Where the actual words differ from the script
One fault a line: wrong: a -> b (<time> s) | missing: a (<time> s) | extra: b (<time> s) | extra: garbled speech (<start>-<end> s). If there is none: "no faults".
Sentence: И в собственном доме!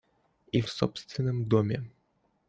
no faults